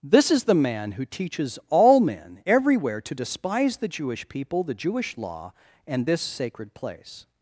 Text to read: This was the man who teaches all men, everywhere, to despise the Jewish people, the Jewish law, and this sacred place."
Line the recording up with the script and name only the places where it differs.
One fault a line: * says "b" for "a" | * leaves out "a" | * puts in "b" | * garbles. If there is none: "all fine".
* says "is" for "was"